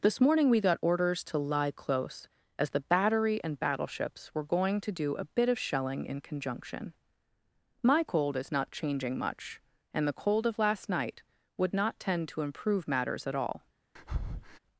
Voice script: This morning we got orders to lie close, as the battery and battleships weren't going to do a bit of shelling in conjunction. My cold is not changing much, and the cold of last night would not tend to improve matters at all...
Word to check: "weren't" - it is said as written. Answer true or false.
false